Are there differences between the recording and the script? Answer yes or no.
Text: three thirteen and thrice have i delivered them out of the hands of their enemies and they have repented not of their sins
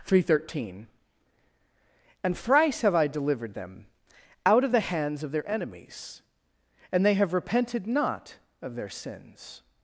no